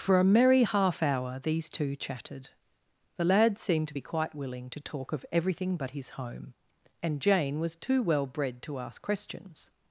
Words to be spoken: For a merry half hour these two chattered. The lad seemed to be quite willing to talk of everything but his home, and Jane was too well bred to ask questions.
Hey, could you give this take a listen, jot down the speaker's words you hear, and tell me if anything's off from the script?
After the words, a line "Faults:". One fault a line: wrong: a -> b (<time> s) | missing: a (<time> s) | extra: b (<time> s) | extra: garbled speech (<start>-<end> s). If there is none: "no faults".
For a merry half hour these two chatted. The lad seemed to be quite willing to talk of everything but his home, and Jane was too well bred to ask questions.
Faults:
wrong: chattered -> chatted (1.9 s)